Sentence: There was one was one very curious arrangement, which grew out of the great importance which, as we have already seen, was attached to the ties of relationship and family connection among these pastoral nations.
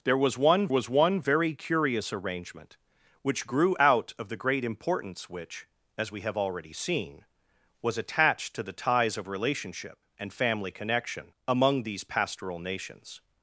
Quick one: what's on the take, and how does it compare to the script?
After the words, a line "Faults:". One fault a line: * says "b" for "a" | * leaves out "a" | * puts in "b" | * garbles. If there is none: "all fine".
There was one was one very curious arrangement, which grew out of the great importance which, as we have already seen, was attached to the ties of relationship and family connection among these pastoral nations.
Faults:
all fine